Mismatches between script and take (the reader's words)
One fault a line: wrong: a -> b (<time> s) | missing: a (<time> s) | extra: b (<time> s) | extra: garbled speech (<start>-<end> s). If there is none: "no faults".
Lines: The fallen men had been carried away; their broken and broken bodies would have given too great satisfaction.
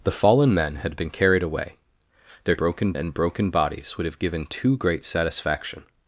no faults